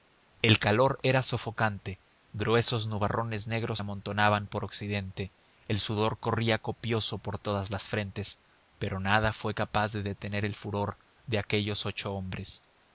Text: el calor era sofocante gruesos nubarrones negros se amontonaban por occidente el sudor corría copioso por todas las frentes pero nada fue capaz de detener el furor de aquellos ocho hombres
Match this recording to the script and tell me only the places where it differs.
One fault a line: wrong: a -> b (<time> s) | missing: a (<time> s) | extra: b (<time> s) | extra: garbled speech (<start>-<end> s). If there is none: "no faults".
missing: se (3.8 s)